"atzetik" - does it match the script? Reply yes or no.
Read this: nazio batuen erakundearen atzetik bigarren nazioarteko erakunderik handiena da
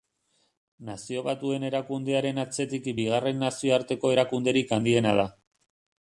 yes